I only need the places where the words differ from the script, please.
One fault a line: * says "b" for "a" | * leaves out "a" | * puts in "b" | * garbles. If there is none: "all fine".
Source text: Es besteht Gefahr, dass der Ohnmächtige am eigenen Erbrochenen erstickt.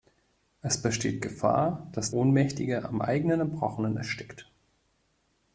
* leaves out "der"